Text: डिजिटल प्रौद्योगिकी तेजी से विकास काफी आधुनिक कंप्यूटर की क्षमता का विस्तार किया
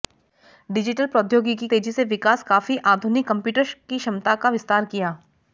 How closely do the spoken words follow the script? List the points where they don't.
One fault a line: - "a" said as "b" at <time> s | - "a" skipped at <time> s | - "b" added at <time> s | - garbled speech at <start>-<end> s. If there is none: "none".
none